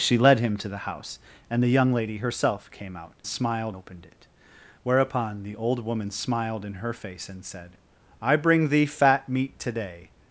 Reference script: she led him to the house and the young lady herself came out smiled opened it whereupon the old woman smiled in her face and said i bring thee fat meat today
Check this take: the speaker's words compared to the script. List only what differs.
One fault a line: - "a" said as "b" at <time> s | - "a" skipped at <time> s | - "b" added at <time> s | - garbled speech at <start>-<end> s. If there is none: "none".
none